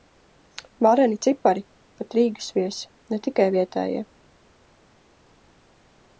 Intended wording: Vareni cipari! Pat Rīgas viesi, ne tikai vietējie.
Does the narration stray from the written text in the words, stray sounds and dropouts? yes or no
no